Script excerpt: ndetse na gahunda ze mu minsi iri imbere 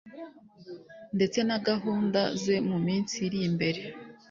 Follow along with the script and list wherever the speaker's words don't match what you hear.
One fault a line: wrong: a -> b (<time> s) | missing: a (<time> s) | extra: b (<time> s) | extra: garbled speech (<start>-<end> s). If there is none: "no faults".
no faults